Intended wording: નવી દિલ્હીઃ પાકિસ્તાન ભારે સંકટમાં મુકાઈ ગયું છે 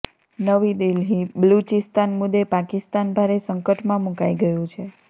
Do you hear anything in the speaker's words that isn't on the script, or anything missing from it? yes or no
yes